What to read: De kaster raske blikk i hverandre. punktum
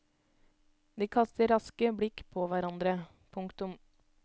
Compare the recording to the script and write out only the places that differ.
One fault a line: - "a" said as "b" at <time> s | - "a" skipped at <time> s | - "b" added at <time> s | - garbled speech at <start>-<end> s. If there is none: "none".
- "i" said as "på" at 2.4 s